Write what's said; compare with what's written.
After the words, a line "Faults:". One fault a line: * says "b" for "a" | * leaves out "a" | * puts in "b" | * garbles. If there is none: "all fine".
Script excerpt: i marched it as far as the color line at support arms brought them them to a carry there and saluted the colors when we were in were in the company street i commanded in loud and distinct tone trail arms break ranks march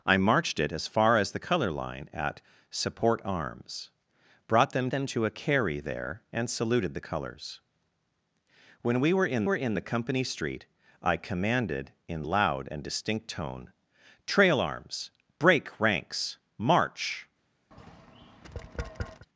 i marched it as far as the color line at support arms brought them them to a carry there and saluted the colors when we were in were in the company street i commanded in loud and distinct tone trail arms break ranks march
Faults:
all fine